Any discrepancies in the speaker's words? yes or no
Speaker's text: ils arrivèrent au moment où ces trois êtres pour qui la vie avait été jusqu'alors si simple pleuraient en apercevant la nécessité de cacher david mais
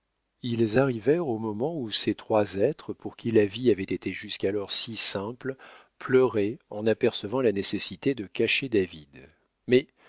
no